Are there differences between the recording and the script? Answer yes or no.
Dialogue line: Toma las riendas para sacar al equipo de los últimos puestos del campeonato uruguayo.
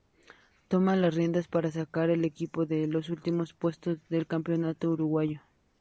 no